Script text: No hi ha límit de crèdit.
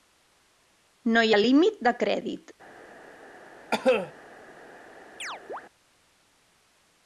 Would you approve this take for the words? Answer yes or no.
yes